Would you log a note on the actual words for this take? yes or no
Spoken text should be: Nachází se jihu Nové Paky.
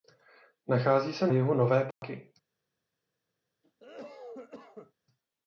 no